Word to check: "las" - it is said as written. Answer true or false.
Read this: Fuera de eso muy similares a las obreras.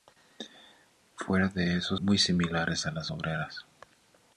true